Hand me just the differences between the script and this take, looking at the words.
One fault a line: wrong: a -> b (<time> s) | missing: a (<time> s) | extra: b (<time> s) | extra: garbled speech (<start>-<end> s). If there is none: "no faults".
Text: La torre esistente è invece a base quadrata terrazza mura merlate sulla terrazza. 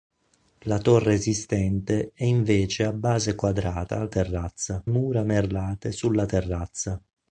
no faults